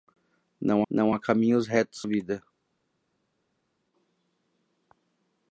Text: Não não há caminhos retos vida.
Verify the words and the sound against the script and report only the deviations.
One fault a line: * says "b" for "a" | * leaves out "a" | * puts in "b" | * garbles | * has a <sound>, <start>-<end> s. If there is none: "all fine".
all fine